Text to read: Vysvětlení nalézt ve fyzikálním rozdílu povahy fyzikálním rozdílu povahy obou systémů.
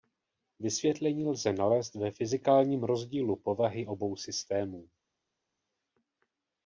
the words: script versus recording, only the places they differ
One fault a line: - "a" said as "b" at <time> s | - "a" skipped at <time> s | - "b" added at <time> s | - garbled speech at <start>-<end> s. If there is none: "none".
- "lze" added at 1.2 s
- "fyzikálním rozdílu povahy" skipped at 3.9 s